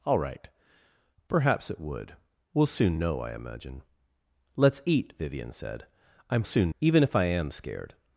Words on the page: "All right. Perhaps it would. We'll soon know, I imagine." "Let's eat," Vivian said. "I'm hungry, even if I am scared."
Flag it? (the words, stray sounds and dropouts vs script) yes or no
yes